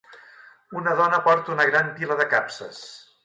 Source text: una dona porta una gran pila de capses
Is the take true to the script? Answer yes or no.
yes